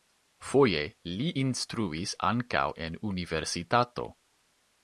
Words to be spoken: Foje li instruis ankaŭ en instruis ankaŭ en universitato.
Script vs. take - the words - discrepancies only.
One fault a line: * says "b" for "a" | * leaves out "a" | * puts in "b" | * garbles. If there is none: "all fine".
* leaves out "instruis ankaŭ en"